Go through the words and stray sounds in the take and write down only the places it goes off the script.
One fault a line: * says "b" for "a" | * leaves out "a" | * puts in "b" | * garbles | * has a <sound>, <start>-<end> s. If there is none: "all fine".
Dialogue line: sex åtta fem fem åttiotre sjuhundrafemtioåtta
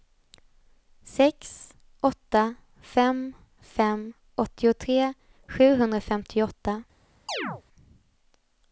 * has a chirp, 7.3-7.6 s